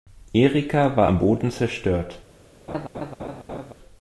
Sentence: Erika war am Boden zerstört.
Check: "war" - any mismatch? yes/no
no